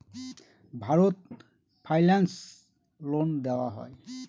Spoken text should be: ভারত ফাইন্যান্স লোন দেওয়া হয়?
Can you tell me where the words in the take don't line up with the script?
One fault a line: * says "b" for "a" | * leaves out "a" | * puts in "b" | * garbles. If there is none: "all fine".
all fine